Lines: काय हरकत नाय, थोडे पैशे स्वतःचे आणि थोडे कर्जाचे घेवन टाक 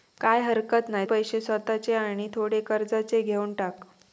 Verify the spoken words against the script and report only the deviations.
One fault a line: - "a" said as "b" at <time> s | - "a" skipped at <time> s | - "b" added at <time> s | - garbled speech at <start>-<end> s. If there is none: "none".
- "थोडे" skipped at 1.1 s